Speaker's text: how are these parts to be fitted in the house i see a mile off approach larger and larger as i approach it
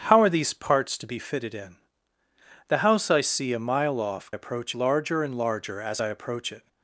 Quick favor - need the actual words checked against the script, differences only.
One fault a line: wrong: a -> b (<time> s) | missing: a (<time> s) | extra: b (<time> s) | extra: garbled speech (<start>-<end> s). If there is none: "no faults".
no faults